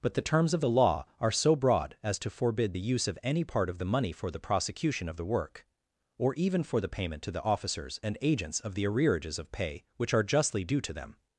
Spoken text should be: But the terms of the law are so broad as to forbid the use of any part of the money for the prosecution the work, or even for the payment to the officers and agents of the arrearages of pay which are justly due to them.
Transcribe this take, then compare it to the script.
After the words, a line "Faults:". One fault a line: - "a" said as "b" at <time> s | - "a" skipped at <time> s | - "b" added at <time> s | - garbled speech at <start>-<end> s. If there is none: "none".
But the terms of the law are so broad as to forbid the use of any part of the money for the prosecution of the work, or even for the payment to the officers and agents of the arrearages of pay which are justly due to them.
Faults:
- "of" added at 5.1 s